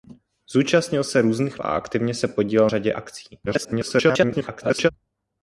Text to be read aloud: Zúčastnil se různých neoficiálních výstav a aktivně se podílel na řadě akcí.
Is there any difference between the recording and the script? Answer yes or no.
yes